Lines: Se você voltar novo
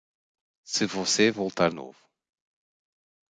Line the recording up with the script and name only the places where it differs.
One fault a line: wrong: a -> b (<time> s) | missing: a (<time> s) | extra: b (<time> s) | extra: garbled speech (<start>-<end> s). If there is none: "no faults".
no faults